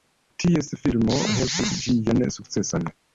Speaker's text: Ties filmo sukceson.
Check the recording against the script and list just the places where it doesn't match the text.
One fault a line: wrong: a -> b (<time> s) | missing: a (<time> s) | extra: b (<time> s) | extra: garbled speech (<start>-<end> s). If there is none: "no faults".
extra: helpis ĝian (1.3 s)